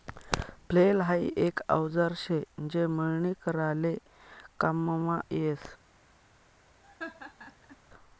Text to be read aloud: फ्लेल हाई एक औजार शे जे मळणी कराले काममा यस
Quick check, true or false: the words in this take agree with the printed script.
true